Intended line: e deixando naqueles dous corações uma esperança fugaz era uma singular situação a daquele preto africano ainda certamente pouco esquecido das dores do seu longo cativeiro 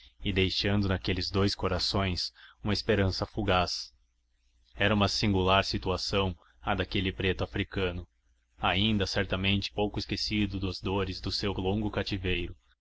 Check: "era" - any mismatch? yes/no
no